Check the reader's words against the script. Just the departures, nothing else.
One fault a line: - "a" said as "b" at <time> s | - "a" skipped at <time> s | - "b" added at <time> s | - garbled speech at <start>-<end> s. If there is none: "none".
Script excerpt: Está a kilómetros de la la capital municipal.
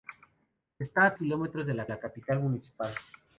none